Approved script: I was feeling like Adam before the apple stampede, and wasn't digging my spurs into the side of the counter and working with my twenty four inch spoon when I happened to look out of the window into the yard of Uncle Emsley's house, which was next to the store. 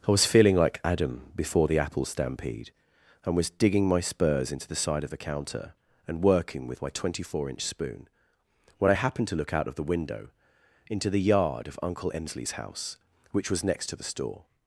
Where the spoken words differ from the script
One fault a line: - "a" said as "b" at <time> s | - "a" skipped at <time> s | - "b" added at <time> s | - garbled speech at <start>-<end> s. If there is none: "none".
- "wasn't" said as "was" at 3.4 s